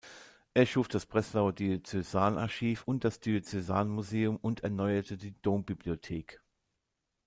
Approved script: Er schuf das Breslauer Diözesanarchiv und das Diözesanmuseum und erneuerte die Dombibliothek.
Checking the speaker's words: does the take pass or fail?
pass